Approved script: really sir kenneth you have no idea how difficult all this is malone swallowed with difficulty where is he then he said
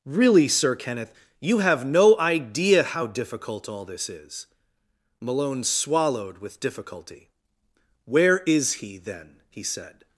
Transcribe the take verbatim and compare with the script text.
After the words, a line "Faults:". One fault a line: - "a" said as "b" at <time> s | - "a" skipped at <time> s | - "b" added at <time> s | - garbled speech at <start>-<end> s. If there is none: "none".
really sir kenneth you have no idea how difficult all this is malone swallowed with difficulty where is he then he said
Faults:
none